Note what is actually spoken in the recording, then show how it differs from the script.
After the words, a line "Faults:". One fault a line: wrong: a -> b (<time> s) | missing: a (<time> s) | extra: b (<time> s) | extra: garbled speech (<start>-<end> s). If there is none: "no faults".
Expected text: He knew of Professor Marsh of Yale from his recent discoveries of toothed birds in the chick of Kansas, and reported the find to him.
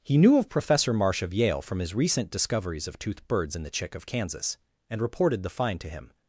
He knew of Professor Marsh of Yale from his recent discoveries of toothed birds in the chick of Kansas, and reported the find to him.
Faults:
no faults